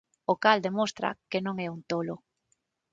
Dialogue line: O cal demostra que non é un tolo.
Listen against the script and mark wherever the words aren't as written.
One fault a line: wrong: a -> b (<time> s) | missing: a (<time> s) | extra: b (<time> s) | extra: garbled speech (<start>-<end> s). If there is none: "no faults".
no faults